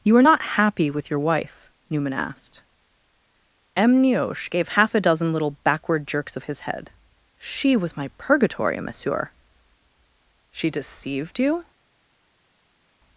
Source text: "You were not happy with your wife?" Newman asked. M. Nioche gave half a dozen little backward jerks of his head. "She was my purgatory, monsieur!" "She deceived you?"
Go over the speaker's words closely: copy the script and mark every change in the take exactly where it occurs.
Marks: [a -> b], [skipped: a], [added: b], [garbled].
"You [were -> are] not happy with your wife?" Newman asked. M. Nioche gave half a dozen little backward jerks of his head. "She was my purgatory, monsieur!" "She deceived you?"